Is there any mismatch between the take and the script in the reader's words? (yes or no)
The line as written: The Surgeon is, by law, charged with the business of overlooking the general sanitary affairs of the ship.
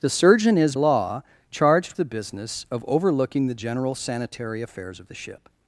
yes